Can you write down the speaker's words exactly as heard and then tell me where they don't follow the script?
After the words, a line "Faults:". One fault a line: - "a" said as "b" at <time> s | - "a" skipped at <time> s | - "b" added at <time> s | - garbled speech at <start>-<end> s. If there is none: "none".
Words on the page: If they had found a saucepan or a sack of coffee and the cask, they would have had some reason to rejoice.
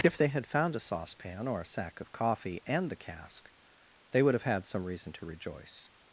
If they had found a saucepan or a sack of coffee and the cask, they would have had some reason to rejoice.
Faults:
none